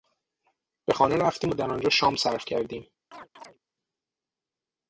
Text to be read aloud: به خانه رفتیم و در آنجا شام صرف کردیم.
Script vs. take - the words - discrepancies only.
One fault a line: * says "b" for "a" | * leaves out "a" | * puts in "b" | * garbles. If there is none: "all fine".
all fine